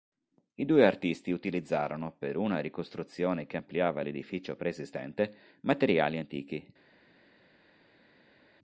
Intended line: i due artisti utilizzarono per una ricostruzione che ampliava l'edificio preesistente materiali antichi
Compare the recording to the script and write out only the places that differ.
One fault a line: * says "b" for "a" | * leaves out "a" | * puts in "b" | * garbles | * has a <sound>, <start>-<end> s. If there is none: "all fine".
all fine